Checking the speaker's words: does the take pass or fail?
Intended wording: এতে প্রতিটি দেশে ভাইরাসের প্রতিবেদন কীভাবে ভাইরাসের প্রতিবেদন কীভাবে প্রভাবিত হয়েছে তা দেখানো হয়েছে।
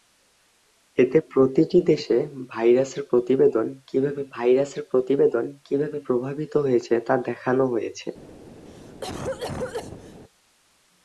pass